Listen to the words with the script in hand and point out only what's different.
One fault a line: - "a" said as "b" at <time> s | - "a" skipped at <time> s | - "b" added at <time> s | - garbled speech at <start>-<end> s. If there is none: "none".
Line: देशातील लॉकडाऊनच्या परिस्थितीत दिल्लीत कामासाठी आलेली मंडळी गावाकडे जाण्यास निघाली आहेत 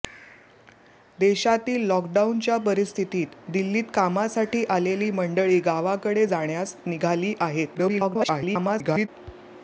- garbled speech at 7.8-9.1 s